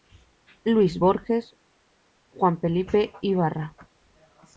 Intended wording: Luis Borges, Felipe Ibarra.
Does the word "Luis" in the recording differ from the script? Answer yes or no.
no